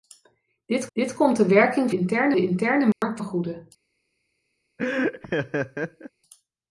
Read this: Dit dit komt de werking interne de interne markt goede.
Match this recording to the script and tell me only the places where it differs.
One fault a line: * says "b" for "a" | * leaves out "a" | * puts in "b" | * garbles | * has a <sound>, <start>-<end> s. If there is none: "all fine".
* has a dropout, 2.9-3.0 s
* has a laugh, 4.8-6.1 s